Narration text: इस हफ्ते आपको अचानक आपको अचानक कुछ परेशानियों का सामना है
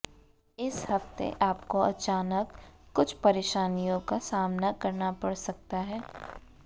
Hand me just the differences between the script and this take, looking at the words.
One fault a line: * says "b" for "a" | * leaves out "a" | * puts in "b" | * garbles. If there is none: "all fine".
* leaves out "आपको अचानक"
* puts in "करना पड़ सकता"